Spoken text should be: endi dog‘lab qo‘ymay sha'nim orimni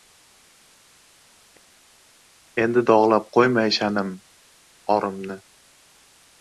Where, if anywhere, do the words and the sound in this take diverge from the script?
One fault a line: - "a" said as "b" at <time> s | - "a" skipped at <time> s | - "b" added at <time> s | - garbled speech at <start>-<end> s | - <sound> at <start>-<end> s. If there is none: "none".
none